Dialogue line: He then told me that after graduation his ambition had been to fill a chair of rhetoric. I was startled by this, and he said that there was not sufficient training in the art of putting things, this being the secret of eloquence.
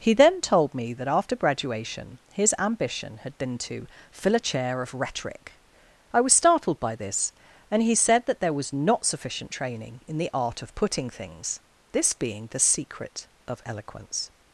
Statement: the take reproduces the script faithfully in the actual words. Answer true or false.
true